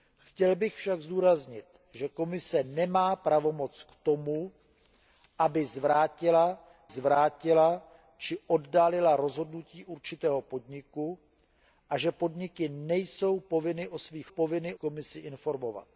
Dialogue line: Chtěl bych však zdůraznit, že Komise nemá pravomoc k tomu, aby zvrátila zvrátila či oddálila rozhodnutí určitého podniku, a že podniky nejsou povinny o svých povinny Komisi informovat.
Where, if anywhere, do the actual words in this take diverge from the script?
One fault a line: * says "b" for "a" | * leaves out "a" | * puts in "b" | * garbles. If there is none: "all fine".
all fine